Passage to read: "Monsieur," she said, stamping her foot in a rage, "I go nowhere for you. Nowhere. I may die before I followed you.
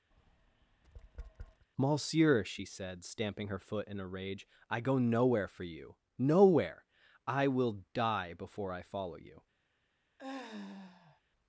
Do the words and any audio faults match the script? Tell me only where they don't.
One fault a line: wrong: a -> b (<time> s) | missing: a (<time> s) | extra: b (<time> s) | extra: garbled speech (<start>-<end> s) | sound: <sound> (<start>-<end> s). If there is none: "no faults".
sound: tap (0.1-1.7 s)
wrong: may -> will (7.5 s)
wrong: followed -> follow (8.8 s)
sound: sigh (10.2-11.2 s)